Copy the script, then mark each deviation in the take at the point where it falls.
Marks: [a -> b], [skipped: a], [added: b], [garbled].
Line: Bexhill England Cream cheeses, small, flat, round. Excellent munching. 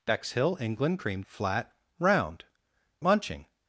Bexhill England Cream [skipped: cheeses, small,] flat, round. [skipped: Excellent] munching.